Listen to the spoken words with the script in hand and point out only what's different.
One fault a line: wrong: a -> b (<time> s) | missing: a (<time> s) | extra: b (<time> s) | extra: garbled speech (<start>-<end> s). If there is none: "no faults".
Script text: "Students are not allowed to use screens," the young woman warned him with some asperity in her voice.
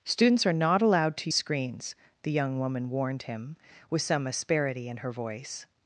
missing: use (1.3 s)